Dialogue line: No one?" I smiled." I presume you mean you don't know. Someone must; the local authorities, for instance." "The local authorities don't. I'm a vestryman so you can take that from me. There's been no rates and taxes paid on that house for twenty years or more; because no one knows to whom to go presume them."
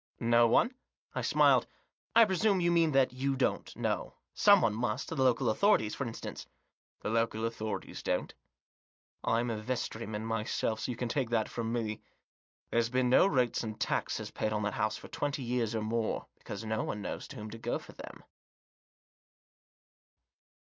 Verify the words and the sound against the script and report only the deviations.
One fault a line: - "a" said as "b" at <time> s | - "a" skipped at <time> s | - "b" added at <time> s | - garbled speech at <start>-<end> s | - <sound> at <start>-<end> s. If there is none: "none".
- "that" added at 2.9 s
- "myself" added at 10.2 s
- "presume" said as "for" at 17.8 s